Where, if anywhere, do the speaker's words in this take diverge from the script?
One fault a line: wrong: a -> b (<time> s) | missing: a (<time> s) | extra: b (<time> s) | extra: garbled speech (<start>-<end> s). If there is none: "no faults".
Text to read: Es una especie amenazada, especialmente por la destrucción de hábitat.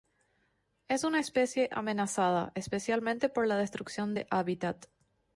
no faults